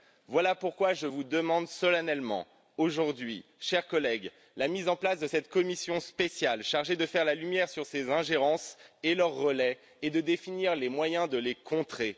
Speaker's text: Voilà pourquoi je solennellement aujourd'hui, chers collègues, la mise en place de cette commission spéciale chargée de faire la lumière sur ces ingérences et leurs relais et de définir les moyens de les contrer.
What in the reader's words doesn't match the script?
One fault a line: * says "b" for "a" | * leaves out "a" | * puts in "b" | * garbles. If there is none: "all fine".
* puts in "vous demande"